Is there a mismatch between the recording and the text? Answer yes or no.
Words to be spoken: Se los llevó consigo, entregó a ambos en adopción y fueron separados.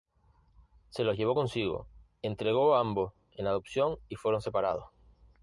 no